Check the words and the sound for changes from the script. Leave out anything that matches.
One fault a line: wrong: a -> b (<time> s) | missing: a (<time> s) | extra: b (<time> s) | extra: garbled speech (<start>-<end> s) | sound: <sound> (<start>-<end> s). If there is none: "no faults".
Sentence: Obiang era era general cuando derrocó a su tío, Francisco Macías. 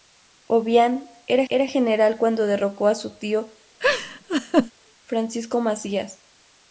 sound: laugh (3.8-4.7 s)